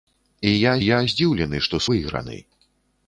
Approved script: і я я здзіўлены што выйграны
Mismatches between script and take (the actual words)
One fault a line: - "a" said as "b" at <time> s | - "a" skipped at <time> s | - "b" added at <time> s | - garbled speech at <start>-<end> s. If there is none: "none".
none